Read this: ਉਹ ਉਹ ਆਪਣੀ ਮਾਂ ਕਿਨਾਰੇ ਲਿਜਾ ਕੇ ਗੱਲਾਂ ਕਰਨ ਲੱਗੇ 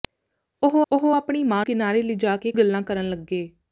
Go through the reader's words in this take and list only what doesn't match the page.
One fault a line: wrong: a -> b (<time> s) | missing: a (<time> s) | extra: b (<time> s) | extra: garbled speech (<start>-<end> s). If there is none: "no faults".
no faults